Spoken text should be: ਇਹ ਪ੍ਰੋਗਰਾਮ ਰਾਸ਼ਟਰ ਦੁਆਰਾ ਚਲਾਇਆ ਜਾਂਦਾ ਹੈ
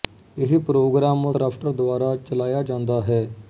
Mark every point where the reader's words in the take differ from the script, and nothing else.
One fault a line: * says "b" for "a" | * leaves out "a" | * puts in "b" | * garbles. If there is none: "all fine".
all fine